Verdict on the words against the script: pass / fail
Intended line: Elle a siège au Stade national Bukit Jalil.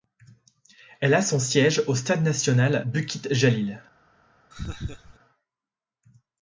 fail